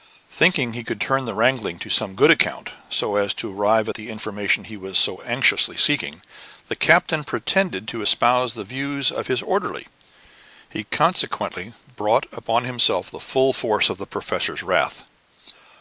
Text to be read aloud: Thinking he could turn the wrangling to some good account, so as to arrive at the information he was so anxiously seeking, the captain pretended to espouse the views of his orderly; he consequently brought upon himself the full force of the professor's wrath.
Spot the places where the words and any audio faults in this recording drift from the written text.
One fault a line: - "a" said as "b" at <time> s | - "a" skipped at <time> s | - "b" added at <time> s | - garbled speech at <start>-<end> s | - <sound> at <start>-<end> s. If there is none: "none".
none